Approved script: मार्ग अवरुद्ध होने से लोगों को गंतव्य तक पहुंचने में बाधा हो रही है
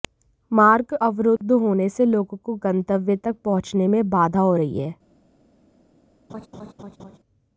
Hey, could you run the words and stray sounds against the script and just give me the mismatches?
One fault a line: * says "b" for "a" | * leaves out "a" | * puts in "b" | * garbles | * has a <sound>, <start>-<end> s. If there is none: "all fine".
* has a dropout, 1.4-1.4 s
* has a laugh, 6.3-7.2 s